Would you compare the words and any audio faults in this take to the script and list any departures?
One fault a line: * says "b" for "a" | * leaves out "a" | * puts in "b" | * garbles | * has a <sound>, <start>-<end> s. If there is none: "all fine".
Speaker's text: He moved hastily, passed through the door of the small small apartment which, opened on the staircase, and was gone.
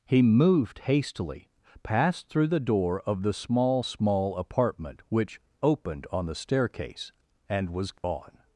* has a dropout, 8.0-8.0 s